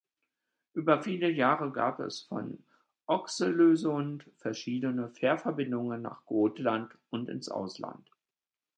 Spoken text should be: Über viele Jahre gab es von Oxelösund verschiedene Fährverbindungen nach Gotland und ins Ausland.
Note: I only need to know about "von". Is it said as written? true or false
true